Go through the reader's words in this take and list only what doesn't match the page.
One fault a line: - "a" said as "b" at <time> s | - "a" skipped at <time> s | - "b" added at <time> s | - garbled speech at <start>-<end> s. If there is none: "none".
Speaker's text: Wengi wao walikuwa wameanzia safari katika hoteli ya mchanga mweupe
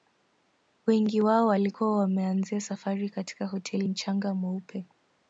- "ya" skipped at 3.9 s